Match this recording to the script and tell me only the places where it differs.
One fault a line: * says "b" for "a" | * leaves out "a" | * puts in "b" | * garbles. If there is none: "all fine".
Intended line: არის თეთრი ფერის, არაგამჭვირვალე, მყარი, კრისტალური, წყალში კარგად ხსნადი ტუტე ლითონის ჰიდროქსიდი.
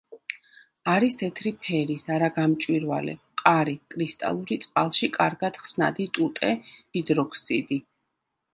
* leaves out "ლითონის"